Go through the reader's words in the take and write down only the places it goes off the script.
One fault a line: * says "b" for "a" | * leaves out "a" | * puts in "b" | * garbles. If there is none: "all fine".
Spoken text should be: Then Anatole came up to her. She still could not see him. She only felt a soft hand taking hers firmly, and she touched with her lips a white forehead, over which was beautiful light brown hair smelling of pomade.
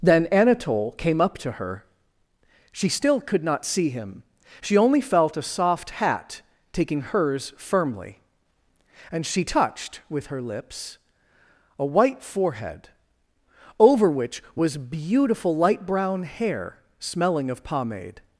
* says "hat" for "hand"